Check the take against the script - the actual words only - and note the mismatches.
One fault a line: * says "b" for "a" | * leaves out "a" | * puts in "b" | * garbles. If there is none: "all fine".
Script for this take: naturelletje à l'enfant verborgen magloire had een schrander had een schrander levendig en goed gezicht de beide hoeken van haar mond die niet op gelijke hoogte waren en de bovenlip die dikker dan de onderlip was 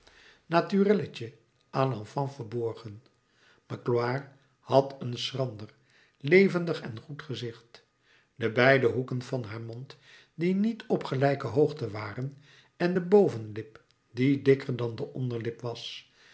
* leaves out "had een schrander"